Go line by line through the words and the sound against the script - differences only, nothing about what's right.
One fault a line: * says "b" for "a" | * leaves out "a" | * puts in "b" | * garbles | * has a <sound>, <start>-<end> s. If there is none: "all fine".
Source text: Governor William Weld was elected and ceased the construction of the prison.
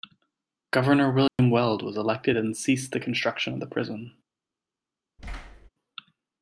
* has a dropout, 1.3-1.4 s
* has a thud, 5.2-5.7 s